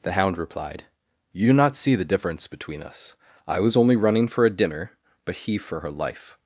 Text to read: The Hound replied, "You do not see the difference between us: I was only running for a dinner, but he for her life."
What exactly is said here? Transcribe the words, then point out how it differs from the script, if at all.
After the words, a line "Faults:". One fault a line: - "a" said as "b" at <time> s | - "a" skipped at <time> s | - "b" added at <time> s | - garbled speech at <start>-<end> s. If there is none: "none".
The Hound replied, "You do not see the difference between us: I was only running for a dinner, but he for her life."
Faults:
none